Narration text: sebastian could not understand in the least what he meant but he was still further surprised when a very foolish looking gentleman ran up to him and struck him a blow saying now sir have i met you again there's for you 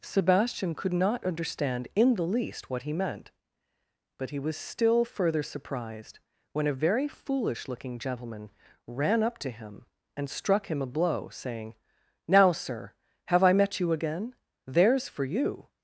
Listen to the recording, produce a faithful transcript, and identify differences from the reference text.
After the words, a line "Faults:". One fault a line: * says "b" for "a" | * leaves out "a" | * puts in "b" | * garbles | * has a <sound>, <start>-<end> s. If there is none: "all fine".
sebastian could not understand in the least what he meant but he was still further surprised when a very foolish looking gentleman ran up to him and struck him a blow saying now sir have i met you again there's for you
Faults:
all fine